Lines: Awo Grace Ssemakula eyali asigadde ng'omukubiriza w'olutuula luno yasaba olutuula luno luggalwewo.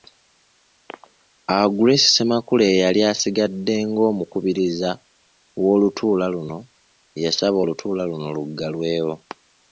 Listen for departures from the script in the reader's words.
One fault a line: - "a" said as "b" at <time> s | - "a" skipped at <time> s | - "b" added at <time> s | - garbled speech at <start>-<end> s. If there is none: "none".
none